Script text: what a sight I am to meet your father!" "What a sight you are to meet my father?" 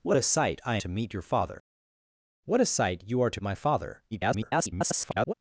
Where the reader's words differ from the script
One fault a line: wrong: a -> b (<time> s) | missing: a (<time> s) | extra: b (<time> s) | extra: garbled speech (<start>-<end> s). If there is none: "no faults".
missing: am (0.8 s)
missing: meet (3.4 s)
extra: garbled speech (4.1-5.3 s)